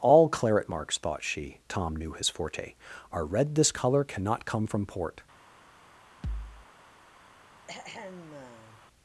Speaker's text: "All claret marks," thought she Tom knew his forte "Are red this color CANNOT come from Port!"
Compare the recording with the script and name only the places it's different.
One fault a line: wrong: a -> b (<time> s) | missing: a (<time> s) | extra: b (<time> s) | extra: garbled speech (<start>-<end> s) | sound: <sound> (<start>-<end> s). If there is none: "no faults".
sound: thud (6.2-6.7 s)
sound: throat clearing (7.7-8.8 s)